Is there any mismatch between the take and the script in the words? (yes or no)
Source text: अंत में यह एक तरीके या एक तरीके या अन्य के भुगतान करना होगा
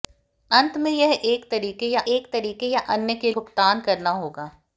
no